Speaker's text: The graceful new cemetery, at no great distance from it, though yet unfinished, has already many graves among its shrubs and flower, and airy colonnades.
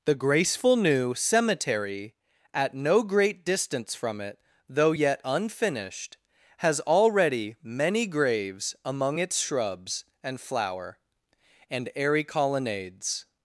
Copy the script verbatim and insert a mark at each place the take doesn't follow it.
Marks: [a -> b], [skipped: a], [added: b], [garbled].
The graceful new cemetery, at no great distance from it, though yet unfinished, has already many graves among its shrubs and flower, and airy colonnades.